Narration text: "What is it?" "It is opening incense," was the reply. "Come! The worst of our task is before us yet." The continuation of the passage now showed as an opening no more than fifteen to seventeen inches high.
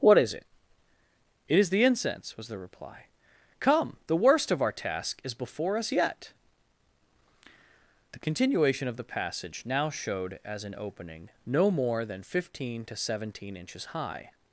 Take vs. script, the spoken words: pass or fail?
fail